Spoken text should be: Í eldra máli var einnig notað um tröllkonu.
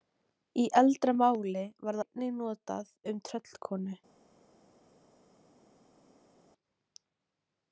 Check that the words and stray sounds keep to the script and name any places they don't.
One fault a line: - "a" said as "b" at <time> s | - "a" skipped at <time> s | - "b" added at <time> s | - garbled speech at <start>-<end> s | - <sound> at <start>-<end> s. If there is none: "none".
none